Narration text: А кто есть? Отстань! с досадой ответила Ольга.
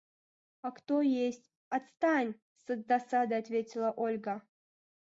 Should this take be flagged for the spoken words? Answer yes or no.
no